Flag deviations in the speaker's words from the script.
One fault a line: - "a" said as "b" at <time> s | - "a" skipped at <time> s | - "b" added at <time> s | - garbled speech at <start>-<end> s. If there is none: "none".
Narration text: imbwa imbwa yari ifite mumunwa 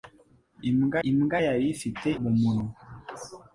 none